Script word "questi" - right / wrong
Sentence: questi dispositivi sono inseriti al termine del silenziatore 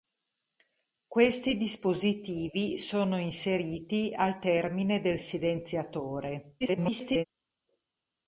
right